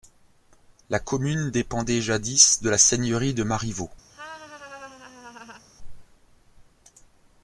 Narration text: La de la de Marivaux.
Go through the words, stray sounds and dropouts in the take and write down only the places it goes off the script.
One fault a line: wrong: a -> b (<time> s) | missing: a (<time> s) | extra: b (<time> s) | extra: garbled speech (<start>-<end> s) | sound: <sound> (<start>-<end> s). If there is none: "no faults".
extra: commune dépendait jadis (1.0 s)
extra: seigneurie (2.8 s)
sound: laugh (4.1-5.7 s)